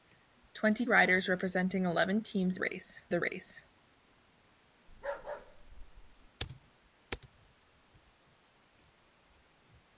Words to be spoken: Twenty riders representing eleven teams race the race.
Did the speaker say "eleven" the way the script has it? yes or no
yes